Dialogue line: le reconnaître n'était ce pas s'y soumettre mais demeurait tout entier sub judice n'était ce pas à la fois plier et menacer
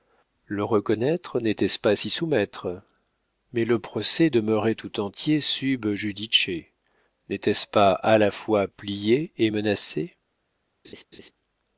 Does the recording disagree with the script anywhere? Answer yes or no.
yes